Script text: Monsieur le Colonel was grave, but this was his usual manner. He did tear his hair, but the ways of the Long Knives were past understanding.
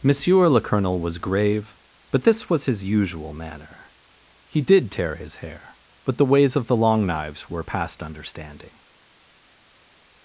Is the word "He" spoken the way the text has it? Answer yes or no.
yes